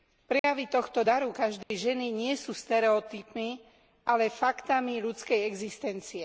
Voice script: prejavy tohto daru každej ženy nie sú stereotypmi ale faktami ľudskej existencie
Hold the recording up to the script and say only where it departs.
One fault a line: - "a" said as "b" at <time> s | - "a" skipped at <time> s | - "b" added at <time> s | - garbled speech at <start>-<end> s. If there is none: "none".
none